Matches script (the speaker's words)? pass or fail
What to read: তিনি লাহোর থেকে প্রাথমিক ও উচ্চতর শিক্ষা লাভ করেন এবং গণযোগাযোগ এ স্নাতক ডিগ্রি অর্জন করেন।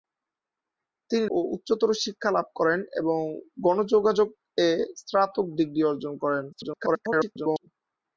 fail